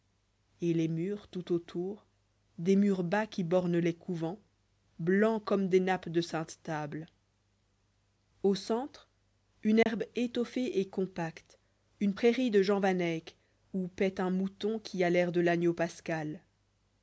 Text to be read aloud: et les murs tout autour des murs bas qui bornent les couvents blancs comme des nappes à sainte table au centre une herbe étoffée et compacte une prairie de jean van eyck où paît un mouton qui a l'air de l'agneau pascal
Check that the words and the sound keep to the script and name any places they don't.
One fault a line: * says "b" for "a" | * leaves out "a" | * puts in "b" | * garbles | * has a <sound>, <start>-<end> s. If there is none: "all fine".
* says "de" for "à"
* has a dropout, 9.8-9.9 s